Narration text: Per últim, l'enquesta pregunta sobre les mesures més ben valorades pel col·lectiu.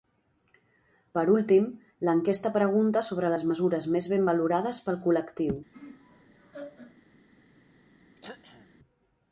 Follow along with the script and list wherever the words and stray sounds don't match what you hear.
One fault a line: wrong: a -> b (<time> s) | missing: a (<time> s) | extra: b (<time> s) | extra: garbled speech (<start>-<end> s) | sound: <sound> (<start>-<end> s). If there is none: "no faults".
sound: laugh (5.7-7.0 s)
sound: throat clearing (8.2-8.8 s)